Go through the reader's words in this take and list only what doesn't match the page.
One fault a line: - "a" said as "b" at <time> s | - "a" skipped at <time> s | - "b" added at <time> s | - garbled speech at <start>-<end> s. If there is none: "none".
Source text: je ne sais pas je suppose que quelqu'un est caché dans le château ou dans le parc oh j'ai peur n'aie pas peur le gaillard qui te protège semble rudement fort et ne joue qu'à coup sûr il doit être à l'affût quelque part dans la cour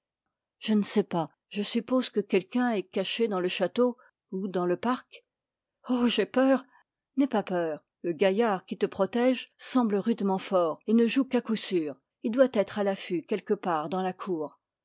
none